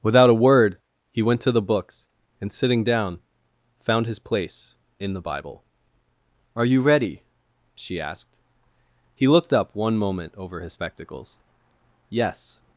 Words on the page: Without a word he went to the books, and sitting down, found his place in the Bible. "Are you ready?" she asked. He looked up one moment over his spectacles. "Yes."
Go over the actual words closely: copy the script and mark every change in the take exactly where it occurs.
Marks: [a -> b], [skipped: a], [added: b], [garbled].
Without a word he went to the books, and sitting down, found his place in the Bible. "Are you ready?" she asked. He looked up one moment over his spectacles. "Yes."